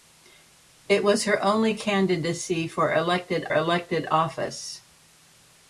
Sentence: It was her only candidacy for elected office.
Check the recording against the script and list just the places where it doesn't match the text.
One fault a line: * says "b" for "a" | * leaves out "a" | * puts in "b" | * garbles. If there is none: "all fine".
* puts in "elected"